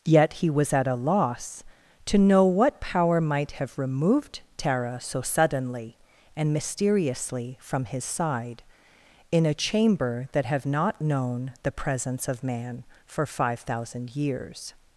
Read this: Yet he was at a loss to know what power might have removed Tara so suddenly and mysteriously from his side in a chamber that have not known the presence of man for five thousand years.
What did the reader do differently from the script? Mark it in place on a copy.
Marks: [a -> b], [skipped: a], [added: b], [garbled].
Yet he was at a loss to know what power might have removed Tara so suddenly and mysteriously from his side in a chamber that have not known the presence of man for five thousand years.